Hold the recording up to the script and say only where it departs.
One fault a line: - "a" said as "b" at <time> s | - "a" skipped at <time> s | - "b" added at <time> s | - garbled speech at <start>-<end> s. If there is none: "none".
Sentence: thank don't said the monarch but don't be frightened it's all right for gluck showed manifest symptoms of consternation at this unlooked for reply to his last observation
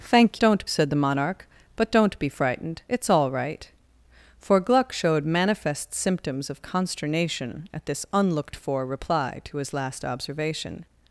none